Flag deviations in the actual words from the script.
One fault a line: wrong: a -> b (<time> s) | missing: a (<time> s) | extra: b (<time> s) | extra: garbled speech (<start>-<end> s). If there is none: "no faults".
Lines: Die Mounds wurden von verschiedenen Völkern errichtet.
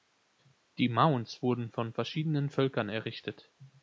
no faults